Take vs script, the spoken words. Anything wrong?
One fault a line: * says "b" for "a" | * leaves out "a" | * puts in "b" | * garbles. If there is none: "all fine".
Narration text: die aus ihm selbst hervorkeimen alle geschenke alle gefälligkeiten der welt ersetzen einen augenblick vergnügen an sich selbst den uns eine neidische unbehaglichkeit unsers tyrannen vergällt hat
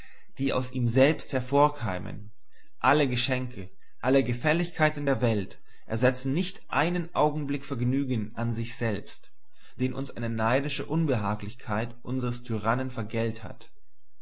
* puts in "nicht"